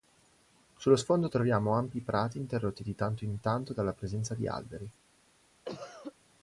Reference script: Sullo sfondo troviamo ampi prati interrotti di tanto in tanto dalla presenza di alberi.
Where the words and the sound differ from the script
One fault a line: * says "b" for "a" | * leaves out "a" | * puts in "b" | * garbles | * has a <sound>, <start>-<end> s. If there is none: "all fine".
* has a cough, 5.6-6.1 s